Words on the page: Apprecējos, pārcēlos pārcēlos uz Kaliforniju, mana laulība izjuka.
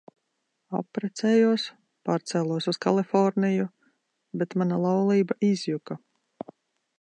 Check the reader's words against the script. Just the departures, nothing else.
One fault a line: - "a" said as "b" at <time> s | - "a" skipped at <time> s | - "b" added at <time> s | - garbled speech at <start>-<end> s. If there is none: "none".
- "pārcēlos" skipped at 2.7 s
- "bet" added at 4.4 s